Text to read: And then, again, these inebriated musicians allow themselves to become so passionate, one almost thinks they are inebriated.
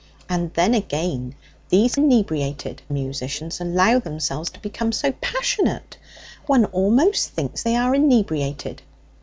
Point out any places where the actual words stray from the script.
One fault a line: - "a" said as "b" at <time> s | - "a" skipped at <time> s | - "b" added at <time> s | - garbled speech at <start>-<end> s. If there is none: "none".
none